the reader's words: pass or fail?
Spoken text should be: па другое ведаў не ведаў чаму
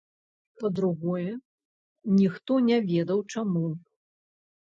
fail